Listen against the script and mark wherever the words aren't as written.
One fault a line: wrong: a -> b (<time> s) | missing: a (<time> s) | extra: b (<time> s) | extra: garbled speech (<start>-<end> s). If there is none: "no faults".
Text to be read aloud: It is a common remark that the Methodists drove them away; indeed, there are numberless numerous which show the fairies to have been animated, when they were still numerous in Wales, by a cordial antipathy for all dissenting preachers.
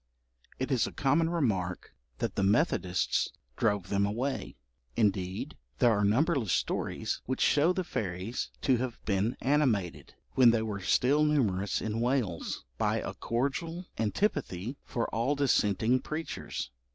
wrong: numerous -> stories (6.5 s)